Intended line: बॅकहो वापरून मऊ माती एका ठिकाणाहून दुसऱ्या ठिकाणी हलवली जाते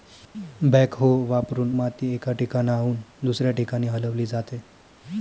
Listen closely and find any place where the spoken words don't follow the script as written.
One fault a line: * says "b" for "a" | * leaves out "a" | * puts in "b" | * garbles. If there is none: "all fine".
* leaves out "मऊ"